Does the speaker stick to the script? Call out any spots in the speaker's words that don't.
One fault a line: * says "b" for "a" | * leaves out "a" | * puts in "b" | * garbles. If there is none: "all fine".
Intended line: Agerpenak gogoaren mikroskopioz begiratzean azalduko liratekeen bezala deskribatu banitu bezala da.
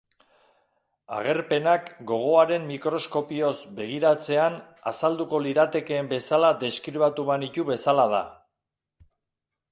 all fine